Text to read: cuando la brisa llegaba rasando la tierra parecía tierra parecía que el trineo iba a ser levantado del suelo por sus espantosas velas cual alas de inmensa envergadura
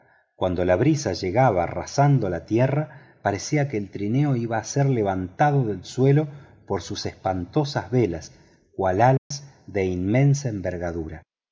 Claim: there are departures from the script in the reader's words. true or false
true